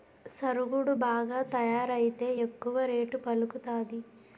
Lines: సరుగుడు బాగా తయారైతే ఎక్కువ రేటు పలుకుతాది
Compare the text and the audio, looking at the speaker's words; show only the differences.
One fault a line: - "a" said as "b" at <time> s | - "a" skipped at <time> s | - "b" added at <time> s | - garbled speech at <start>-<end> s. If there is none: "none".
none